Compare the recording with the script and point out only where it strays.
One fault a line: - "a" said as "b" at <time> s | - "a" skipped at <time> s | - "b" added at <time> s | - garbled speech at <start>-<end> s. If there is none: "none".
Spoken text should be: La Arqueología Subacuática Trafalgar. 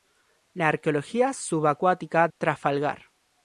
none